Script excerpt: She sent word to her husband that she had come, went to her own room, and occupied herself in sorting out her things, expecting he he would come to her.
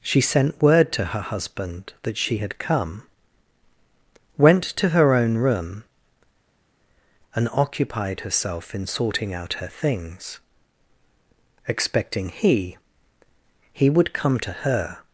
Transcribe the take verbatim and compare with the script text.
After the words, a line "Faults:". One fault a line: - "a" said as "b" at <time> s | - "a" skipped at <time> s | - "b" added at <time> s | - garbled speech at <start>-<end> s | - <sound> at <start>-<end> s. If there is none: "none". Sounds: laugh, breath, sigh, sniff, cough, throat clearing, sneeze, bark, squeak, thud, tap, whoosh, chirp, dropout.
She sent word to her husband that she had come, went to her own room, and occupied herself in sorting out her things, expecting he he would come to her.
Faults:
none